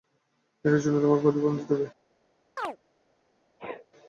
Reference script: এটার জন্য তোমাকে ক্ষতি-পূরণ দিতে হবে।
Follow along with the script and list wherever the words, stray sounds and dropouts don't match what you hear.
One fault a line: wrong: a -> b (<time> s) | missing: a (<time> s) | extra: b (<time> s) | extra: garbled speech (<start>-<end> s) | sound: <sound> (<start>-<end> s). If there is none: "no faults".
sound: chirp (2.6-2.8 s)
sound: sneeze (3.6-3.9 s)